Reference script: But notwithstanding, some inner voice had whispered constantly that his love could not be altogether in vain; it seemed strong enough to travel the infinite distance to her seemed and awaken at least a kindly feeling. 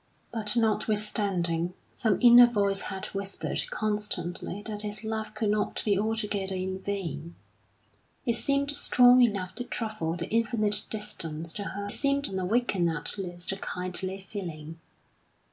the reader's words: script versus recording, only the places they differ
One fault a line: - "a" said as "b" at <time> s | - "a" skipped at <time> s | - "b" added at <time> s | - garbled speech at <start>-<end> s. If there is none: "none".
none